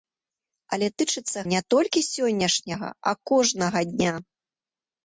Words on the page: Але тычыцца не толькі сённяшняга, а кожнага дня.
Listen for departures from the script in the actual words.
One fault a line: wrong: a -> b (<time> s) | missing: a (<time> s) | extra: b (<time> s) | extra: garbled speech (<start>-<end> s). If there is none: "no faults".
no faults